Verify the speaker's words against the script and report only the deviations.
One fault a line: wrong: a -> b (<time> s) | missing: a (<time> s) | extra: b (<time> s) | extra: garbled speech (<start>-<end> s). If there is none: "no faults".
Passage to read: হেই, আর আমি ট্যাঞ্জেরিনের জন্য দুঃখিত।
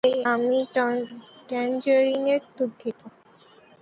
missing: আর (0.2 s)
missing: জন্য (2.4 s)